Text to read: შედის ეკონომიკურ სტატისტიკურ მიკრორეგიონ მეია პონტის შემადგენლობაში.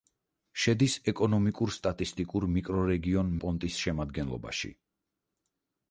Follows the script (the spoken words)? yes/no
no